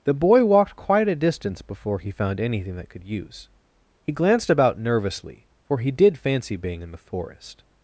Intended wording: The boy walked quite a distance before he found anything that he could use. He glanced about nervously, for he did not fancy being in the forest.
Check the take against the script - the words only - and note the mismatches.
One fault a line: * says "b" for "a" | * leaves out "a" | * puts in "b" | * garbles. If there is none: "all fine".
* leaves out "he"
* leaves out "not"